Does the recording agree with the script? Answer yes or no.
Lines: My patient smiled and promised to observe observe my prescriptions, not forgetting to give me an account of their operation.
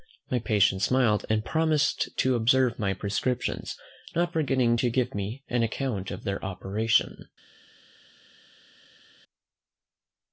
no